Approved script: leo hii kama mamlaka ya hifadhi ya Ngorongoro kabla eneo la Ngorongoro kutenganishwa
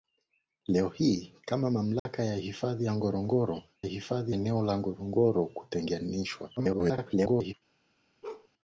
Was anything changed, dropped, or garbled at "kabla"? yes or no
yes